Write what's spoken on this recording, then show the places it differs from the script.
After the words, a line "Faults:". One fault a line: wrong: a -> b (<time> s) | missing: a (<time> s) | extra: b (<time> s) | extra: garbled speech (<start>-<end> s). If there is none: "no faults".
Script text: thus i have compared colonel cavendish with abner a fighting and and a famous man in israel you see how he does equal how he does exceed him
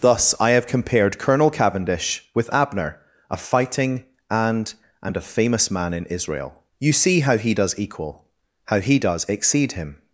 thus i have compared colonel cavendish with abner a fighting and and a famous man in israel you see how he does equal how he does exceed him
Faults:
no faults